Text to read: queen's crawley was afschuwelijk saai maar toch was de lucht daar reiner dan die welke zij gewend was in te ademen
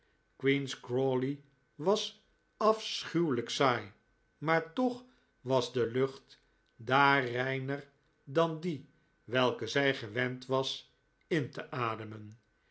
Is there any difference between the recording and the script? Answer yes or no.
no